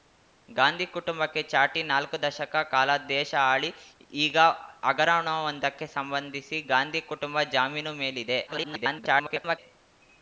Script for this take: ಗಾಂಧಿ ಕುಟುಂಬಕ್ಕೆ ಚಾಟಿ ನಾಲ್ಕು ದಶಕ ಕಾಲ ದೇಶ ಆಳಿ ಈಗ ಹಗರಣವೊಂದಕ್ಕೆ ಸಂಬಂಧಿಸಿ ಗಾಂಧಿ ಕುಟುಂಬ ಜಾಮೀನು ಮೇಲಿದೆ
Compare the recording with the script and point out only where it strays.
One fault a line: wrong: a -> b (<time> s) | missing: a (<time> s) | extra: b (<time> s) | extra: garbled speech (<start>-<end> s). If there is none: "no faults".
extra: garbled speech (8.5-9.6 s)